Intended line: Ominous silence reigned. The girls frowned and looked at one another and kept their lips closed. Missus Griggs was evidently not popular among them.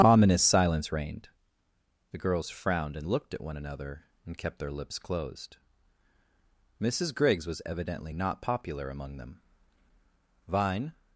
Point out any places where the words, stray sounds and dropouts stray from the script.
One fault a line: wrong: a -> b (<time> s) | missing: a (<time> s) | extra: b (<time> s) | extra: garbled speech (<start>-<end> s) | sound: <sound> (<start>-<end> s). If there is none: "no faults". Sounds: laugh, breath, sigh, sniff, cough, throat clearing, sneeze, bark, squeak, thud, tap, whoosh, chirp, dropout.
extra: Vine (10.5 s)